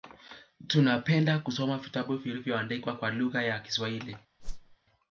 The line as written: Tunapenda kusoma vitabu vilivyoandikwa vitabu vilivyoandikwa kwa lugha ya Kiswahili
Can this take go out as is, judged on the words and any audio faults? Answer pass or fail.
fail